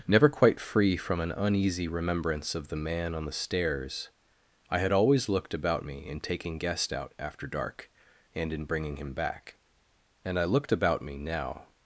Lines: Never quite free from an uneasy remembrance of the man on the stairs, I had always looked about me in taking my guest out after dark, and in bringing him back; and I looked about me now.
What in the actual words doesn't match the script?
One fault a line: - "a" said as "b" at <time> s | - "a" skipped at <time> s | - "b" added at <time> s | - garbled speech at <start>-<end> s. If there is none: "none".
- "my" skipped at 6.6 s